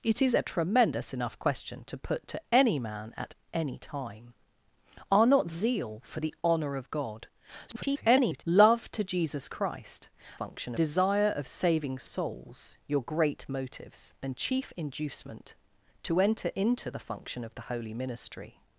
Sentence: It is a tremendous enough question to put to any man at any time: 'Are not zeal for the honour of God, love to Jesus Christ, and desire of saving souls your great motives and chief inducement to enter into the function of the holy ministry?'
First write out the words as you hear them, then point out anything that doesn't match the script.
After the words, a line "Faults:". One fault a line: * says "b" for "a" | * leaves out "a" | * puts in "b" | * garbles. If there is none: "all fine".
It is a tremendous enough question to put to any man at any time: 'Are not zeal for the honour of God, [garbled] love to Jesus Christ, function desire of saving souls your great motives and chief inducement to enter into the function of the holy ministry?'
Faults:
* garbles
* says "function" for "and"